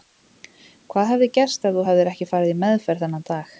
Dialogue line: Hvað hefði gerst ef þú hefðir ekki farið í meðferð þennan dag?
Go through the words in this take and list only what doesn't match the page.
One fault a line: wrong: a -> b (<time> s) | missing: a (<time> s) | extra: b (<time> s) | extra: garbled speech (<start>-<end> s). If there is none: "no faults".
no faults